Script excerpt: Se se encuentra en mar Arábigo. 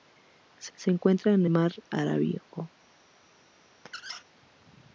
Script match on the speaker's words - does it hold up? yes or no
yes